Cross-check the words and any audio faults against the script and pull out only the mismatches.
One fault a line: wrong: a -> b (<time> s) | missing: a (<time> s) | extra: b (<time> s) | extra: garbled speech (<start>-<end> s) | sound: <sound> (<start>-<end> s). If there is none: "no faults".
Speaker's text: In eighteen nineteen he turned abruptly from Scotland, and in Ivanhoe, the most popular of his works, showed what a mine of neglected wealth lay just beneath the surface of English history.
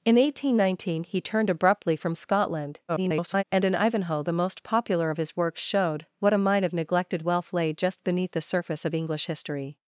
extra: garbled speech (2.9-3.4 s)